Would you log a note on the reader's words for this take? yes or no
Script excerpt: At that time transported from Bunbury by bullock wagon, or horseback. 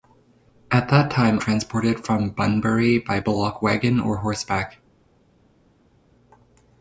no